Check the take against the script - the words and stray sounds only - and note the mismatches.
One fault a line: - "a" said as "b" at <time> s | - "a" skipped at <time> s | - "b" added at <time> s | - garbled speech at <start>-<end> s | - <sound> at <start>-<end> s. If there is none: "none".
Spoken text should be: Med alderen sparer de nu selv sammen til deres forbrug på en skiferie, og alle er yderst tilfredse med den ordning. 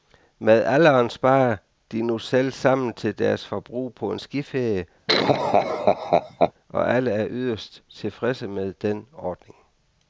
- laugh at 5.1-6.5 s